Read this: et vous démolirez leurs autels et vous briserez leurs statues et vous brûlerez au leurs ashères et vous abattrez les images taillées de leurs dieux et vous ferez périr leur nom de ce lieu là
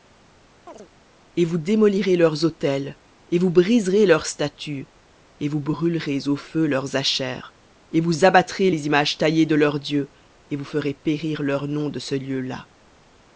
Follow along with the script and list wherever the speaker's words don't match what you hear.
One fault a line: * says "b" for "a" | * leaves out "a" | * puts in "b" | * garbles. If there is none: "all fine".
* puts in "feu"